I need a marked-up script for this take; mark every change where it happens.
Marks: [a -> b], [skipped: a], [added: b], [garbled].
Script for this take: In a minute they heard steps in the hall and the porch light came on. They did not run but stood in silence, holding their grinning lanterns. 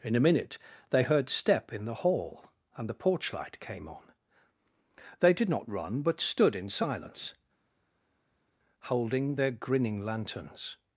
In a minute they heard [steps -> step] in the hall and the porch light came on. They did not run but stood in silence, holding their grinning lanterns.